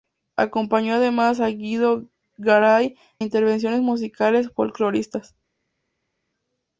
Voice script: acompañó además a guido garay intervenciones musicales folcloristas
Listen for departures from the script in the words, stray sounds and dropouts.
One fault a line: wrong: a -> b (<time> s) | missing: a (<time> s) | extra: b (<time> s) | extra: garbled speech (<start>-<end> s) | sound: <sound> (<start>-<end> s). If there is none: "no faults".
no faults